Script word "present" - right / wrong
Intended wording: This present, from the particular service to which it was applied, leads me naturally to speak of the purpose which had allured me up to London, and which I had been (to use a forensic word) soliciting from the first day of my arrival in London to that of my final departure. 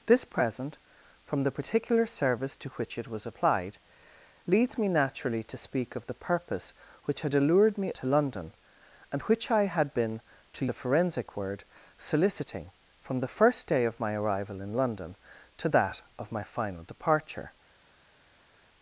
right